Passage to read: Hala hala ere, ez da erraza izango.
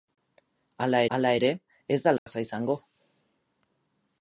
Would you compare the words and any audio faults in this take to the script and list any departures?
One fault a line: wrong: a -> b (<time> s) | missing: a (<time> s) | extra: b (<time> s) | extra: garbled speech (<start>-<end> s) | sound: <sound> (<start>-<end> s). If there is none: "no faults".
sound: dropout (2.2-2.3 s)